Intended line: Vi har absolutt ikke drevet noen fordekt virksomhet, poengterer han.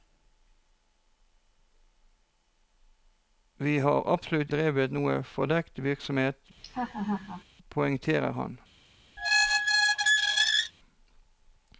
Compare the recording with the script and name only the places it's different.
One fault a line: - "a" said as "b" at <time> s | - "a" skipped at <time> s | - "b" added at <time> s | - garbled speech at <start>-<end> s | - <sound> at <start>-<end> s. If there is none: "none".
- "ikke" skipped at 4.5 s
- laugh at 6.6-7.4 s
- squeak at 9.2-10.7 s